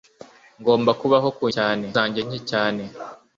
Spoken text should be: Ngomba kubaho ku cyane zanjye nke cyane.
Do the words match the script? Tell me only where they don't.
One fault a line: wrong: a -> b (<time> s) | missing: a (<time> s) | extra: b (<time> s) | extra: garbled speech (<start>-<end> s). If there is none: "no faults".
no faults